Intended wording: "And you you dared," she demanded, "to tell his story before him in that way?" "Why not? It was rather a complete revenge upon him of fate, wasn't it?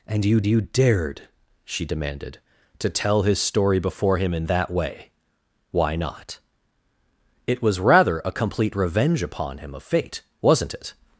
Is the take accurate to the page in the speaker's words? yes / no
yes